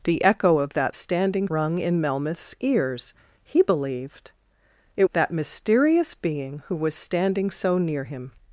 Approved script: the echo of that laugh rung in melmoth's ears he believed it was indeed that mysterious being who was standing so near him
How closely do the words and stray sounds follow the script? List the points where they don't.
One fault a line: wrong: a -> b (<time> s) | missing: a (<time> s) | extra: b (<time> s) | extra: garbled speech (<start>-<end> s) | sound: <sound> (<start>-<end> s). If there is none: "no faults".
wrong: laugh -> standing (0.9 s)
missing: was indeed (5.1 s)